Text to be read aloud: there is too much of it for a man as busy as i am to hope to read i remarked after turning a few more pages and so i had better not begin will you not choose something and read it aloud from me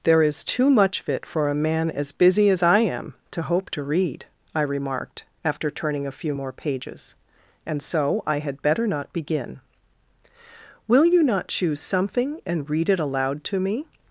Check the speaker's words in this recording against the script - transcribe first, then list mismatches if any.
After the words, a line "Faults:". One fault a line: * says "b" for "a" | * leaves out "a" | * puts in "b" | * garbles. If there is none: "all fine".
there is too much of it for a man as busy as i am to hope to read i remarked after turning a few more pages and so i had better not begin will you not choose something and read it aloud to me
Faults:
* says "to" for "from"